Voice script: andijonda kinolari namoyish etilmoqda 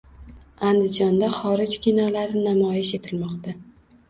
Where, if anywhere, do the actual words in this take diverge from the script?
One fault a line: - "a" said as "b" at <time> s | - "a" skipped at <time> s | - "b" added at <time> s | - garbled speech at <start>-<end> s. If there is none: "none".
- "xorij" added at 1.4 s